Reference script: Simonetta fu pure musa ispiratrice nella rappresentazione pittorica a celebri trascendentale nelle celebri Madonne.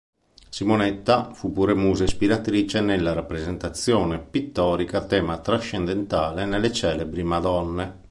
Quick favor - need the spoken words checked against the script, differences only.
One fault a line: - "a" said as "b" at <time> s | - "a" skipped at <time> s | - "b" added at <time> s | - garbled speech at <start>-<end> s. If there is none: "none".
- "celebri" said as "tema" at 5.1 s